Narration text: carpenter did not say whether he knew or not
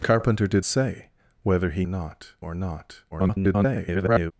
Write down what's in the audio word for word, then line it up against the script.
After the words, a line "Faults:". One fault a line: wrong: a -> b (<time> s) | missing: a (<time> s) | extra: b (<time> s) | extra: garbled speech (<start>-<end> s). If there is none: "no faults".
carpenter did say whether he not or not [garbled]
Faults:
missing: not (0.7 s)
wrong: knew -> not (1.9 s)
extra: garbled speech (3.1-4.3 s)